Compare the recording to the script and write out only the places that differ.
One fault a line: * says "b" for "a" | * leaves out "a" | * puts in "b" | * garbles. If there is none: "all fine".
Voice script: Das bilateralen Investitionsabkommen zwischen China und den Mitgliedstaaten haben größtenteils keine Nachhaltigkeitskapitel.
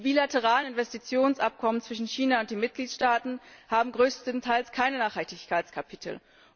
* says "Die" for "Das"